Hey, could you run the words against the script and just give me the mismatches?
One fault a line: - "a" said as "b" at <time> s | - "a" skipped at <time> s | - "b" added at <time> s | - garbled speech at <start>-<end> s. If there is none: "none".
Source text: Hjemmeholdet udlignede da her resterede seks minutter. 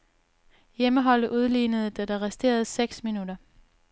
- "her" said as "der" at 2.0 s